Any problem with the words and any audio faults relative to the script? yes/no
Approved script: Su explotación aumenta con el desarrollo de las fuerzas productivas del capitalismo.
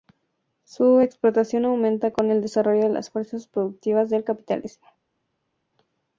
no